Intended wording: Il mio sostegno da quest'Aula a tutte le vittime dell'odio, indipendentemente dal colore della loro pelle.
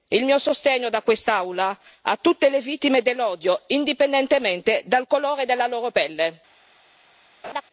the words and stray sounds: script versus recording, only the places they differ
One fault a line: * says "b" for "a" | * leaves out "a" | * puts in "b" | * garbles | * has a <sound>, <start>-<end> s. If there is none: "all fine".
* has a laugh, 7.4-7.6 s